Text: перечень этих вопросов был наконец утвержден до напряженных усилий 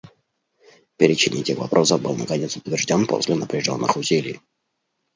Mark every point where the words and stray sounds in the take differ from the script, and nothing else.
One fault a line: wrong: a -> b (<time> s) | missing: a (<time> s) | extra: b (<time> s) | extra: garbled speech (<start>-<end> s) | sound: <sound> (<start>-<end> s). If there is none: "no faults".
wrong: до -> после (3.0 s)